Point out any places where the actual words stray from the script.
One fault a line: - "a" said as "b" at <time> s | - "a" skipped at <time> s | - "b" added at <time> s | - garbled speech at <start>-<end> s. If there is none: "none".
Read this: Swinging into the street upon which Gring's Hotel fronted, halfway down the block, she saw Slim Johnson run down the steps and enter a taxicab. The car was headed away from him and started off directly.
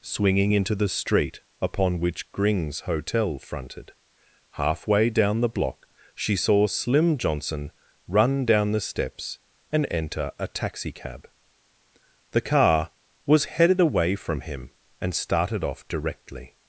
none